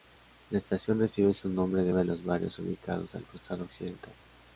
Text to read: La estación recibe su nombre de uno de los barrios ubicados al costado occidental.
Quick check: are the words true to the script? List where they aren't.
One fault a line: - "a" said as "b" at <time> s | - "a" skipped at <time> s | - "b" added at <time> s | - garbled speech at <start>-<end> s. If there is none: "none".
- "uno" skipped at 1.9 s